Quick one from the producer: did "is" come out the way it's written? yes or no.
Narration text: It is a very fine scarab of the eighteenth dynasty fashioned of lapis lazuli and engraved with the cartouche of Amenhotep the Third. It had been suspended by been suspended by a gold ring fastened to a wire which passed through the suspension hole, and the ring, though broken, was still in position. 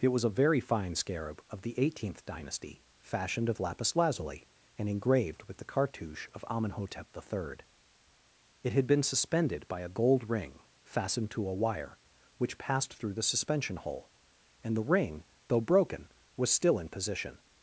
no